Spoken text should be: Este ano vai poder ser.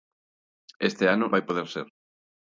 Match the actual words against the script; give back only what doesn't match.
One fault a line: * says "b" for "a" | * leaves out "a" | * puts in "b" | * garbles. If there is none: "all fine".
all fine